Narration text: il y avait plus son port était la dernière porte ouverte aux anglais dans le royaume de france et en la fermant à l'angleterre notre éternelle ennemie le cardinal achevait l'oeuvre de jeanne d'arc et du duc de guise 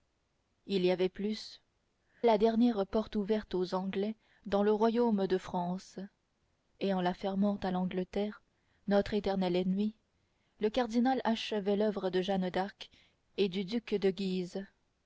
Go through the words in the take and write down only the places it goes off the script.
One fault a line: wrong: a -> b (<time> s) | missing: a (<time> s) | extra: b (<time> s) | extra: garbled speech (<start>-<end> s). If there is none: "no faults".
missing: son port était (1.6 s)